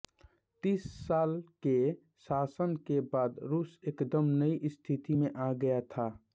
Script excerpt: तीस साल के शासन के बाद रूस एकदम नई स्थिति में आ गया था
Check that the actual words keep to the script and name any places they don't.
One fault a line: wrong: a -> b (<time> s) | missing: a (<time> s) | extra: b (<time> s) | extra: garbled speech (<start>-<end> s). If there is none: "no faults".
no faults